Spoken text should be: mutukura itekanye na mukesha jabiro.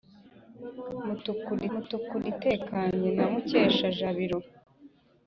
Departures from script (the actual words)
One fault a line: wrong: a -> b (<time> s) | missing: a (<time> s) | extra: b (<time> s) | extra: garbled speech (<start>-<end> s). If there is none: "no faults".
extra: mutukura (1.7 s)